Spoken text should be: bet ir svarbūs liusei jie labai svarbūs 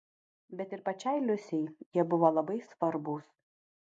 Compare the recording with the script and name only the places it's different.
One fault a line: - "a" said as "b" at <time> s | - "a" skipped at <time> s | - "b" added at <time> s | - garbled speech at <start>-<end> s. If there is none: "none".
- "svarbūs" said as "pačiai" at 0.9 s
- "buvo" added at 2.1 s